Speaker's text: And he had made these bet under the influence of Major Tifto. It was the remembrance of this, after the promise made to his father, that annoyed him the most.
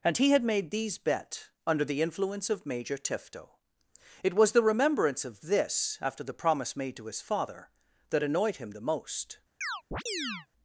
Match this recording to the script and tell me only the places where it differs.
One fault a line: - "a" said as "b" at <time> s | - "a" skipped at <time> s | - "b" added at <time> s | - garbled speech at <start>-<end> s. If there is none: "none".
none